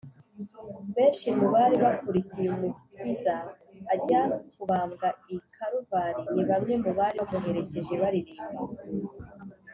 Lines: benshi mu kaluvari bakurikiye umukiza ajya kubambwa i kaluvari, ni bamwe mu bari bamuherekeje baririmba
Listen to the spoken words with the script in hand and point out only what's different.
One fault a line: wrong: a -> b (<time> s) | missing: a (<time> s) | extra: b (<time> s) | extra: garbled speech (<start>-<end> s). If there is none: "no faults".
wrong: kaluvari -> bari (1.5 s)